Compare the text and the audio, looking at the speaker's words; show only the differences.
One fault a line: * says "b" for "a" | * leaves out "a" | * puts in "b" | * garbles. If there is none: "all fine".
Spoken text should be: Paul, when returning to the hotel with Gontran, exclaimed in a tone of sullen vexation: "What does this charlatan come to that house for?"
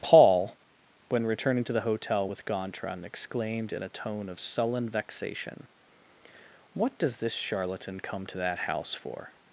all fine